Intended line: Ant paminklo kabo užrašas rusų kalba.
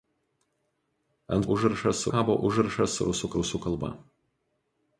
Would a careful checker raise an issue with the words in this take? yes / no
yes